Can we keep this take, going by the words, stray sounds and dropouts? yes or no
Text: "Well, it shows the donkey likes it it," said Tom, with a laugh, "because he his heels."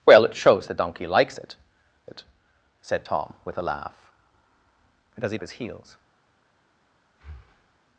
no